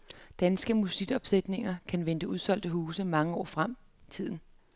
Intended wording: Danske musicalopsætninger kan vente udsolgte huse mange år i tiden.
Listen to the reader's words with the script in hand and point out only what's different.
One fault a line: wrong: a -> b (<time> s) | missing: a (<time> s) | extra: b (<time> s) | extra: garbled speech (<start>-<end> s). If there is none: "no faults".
extra: frem (3.4 s)